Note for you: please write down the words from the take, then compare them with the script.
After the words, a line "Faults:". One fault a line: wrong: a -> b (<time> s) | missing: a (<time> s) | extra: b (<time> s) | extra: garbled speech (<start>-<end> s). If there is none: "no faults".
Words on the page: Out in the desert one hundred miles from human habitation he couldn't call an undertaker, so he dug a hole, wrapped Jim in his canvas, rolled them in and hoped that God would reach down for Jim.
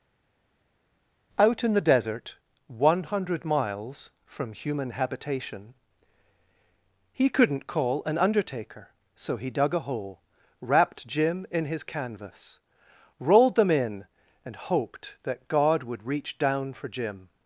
Out in the desert one hundred miles from human habitation he couldn't call an undertaker, so he dug a hole, wrapped Jim in his canvas, rolled them in and hoped that God would reach down for Jim.
Faults:
no faults